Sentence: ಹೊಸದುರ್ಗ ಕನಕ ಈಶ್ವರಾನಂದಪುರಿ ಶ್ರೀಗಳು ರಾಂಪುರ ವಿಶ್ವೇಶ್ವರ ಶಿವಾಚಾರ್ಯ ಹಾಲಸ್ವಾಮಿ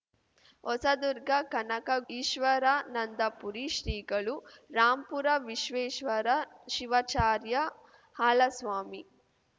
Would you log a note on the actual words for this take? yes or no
no